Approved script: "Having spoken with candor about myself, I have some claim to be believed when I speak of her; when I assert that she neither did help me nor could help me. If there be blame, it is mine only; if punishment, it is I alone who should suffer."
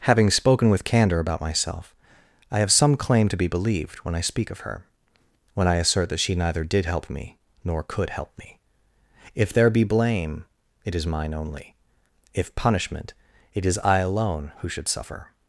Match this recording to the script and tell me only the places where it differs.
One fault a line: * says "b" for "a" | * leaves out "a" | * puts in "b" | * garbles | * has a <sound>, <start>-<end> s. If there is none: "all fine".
all fine